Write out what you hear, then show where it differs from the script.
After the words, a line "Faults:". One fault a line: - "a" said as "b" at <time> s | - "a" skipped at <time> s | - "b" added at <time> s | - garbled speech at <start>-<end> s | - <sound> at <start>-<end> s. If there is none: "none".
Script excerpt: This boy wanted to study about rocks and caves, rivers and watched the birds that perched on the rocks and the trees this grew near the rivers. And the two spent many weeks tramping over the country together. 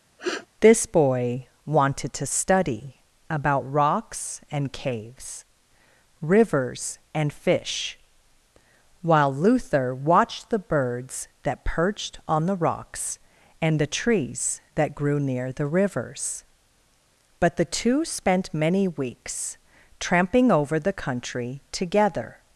This boy wanted to study about rocks and caves, rivers and fish, while Luther watched the birds that perched on the rocks and the trees that grew near the rivers. But the two spent many weeks tramping over the country together.
Faults:
- sniff at 0.2-0.5 s
- "fish while Luther" added at 7.3 s
- "this" said as "that" at 14.8 s
- "And" said as "But" at 17.4 s